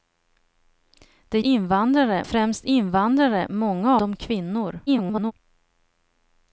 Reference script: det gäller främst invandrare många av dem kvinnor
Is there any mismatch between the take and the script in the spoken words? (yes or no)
yes